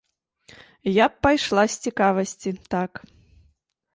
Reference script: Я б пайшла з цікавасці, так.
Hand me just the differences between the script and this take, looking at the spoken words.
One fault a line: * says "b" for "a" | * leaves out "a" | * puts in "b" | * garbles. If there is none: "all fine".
all fine